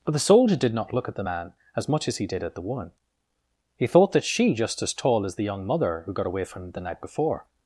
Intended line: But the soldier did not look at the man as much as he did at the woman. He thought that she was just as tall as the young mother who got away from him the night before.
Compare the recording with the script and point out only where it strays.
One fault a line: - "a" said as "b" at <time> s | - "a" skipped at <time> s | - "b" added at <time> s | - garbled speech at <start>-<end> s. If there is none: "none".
- "was" skipped at 4.5 s